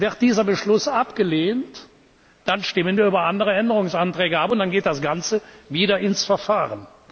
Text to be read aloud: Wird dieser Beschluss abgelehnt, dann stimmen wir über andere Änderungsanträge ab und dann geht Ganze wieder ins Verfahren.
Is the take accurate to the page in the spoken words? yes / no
no